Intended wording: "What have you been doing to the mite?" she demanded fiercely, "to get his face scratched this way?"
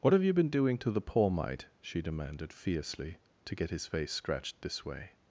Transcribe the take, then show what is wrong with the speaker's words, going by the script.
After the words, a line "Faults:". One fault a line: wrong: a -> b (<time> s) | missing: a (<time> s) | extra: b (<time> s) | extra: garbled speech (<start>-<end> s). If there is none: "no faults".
"What have you been doing to the poor mite?" she demanded fiercely, "to get his face scratched this way?"
Faults:
extra: poor (1.0 s)